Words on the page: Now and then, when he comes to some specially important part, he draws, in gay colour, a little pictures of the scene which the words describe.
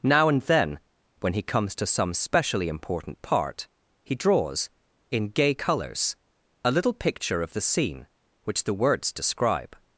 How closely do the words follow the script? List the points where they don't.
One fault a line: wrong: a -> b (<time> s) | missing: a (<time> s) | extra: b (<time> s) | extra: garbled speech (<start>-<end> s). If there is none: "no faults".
wrong: colour -> colours (5.5 s)
wrong: pictures -> picture (6.9 s)